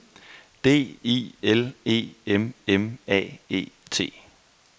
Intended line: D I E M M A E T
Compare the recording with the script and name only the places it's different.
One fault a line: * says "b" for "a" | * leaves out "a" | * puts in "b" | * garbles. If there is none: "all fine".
* puts in "L"